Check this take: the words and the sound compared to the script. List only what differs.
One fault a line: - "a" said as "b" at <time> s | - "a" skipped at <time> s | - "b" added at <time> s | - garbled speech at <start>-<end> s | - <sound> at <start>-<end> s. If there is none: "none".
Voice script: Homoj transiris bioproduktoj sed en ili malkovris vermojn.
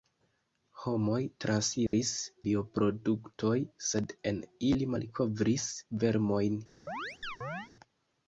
- dropout at 1.9-1.9 s
- chirp at 6.9-7.7 s